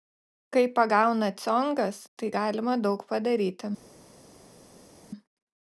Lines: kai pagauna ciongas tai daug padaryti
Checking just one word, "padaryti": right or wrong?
right